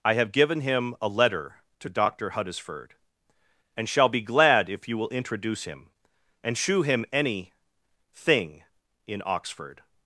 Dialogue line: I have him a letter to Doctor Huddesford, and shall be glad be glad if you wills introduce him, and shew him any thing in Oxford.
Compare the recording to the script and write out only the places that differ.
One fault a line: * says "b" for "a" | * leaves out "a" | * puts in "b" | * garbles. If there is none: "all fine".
* puts in "given"
* leaves out "be glad"
* says "will" for "wills"